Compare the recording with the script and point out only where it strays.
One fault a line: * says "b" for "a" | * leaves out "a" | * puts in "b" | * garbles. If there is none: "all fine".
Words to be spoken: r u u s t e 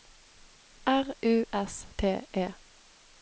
* leaves out "u"